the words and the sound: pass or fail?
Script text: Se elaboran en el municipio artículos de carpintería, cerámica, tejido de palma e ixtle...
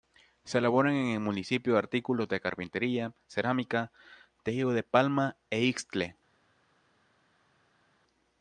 pass